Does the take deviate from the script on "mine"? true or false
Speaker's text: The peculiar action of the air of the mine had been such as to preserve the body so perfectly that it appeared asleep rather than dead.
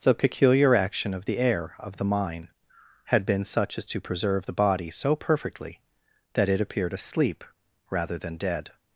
false